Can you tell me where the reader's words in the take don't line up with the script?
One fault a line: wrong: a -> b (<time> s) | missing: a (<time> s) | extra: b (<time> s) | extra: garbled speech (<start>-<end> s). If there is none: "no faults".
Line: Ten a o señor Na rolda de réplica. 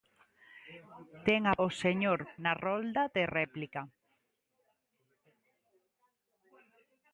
no faults